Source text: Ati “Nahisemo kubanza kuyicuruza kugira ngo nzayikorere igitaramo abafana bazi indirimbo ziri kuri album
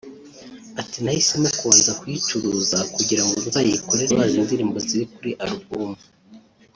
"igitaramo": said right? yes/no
no